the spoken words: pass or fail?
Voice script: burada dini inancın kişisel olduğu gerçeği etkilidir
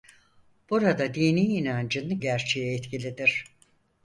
fail